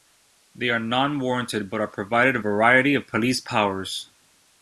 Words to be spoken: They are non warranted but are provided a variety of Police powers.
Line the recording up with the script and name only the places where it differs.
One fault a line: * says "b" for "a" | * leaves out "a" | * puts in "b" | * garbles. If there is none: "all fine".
all fine